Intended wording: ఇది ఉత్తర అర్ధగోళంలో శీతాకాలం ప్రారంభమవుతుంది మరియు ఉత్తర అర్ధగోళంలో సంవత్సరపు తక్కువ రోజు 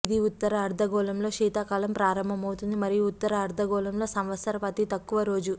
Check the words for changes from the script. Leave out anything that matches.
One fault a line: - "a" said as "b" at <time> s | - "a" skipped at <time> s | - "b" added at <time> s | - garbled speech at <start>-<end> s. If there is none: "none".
- "అతి" added at 4.7 s